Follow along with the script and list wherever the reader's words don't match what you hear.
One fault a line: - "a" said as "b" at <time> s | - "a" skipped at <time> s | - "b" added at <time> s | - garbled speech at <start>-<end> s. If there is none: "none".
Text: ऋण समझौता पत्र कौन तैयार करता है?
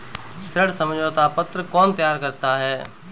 none